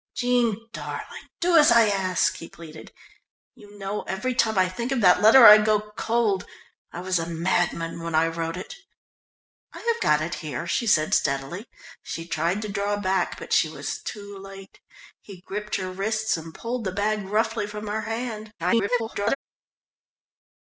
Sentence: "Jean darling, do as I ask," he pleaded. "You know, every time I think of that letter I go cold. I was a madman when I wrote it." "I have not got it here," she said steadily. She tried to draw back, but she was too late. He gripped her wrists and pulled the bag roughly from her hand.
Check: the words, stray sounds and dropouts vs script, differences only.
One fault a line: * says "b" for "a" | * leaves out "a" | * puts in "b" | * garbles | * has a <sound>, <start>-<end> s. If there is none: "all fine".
* leaves out "not"
* garbles